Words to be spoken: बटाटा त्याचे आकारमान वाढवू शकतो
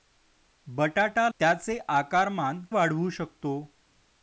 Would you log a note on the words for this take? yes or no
no